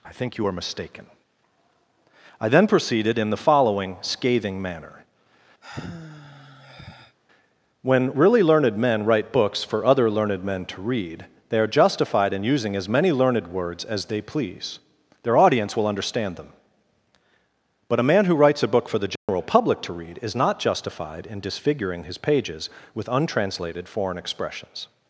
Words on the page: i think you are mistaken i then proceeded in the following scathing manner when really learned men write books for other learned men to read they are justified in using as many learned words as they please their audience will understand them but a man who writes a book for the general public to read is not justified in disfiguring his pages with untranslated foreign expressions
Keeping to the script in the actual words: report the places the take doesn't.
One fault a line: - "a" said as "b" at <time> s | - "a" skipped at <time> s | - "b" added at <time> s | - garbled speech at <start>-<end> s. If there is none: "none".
none